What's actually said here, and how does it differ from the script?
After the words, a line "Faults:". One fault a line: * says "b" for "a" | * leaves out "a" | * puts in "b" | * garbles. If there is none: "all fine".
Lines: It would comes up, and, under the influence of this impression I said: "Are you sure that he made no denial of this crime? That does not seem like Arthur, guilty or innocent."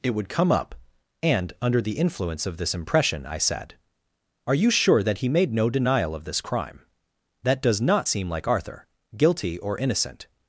It would come up, and, under the influence of this impression I said: "Are you sure that he made no denial of this crime? That does not seem like Arthur, guilty or innocent."
Faults:
* says "come" for "comes"